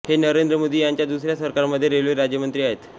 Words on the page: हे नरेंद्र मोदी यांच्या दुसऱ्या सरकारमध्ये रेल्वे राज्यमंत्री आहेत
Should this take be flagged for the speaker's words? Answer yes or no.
no